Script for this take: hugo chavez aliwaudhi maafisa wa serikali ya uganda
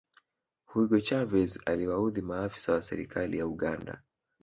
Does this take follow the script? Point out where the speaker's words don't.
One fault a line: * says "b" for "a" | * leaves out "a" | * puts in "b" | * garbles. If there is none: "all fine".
all fine